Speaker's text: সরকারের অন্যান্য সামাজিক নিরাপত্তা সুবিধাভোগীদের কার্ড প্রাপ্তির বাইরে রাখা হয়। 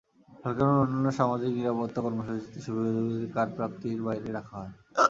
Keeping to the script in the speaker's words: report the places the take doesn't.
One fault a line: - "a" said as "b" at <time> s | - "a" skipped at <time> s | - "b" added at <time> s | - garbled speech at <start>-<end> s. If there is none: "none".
- "কর্মসূচিতে" added at 2.0 s